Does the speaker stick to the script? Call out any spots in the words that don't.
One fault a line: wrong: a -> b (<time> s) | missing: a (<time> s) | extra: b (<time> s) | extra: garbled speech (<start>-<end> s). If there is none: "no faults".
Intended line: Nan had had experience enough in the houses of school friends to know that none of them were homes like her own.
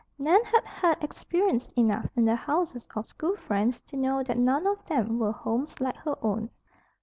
no faults